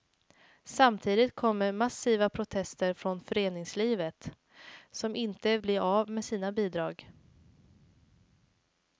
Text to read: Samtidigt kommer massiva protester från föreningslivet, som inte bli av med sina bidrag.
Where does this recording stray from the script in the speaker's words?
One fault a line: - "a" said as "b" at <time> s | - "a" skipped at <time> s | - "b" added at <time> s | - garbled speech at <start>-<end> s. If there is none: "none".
none